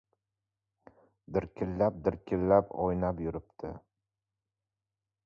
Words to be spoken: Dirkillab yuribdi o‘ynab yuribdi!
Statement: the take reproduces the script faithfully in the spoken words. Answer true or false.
false